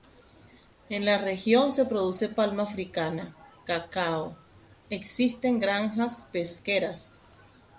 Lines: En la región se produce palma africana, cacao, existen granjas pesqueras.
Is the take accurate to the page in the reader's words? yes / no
yes